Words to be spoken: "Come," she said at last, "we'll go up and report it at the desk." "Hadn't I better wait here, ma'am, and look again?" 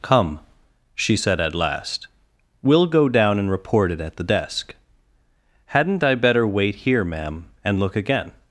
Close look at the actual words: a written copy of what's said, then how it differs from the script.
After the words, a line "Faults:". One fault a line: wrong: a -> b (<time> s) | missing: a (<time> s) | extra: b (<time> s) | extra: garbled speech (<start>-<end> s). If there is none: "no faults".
"Come," she said at last, "we'll go down and report it at the desk." "Hadn't I better wait here, ma'am, and look again?"
Faults:
wrong: up -> down (3.1 s)